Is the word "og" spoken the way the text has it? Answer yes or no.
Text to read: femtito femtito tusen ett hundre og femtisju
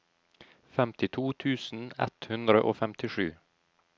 yes